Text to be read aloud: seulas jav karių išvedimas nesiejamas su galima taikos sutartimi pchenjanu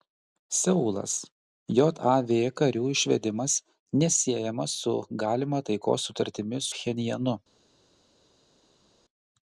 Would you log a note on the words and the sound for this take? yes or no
no